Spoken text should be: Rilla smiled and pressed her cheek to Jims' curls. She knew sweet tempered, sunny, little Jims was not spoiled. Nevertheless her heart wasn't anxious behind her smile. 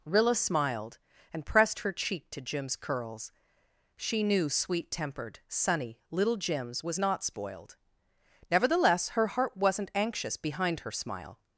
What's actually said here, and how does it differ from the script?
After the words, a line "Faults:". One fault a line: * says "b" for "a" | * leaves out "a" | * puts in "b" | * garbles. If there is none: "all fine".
Rilla smiled and pressed her cheek to Jims' curls. She knew sweet tempered, sunny, little Jims was not spoiled. Nevertheless her heart wasn't anxious behind her smile.
Faults:
all fine